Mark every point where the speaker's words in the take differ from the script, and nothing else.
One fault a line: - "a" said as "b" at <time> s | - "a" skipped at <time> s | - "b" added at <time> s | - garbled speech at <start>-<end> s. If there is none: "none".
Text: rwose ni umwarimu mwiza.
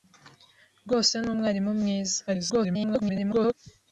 - garbled speech at 2.3-3.5 s